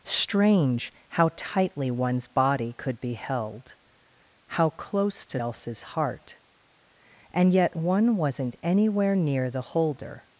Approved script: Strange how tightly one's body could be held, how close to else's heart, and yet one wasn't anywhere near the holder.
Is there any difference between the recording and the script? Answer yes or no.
no